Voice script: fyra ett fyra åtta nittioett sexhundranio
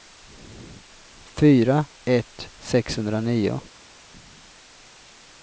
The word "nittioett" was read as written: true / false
false